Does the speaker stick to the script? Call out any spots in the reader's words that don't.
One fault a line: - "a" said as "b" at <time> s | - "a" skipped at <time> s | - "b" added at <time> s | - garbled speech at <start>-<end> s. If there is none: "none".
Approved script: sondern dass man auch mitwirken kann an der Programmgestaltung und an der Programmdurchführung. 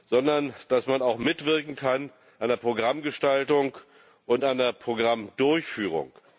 none